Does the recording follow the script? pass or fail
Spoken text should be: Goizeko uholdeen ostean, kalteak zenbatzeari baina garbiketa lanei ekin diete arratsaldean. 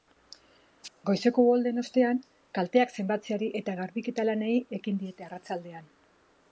fail